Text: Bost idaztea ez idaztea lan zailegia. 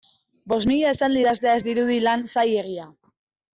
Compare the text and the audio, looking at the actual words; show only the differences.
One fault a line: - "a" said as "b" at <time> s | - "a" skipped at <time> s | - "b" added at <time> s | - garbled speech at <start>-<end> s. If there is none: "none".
- "mila esaldi" added at 0.7 s
- "idaztea" said as "dirudi" at 1.7 s